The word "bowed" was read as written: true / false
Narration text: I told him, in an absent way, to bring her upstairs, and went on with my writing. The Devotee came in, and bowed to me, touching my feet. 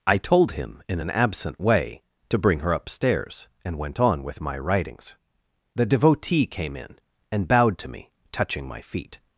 true